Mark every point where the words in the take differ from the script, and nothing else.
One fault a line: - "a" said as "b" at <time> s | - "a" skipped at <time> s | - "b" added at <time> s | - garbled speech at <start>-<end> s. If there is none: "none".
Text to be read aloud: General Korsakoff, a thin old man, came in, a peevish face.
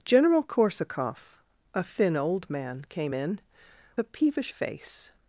none